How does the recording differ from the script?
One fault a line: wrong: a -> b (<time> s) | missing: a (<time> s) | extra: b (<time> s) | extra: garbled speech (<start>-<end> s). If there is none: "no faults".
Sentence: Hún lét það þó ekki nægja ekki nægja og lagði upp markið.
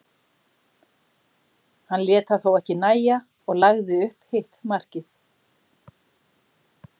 wrong: Hún -> Hann (1.9 s)
missing: ekki nægja (3.2 s)
extra: hitt (4.4 s)